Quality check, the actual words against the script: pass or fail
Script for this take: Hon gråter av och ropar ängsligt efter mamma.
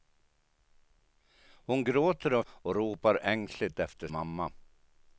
pass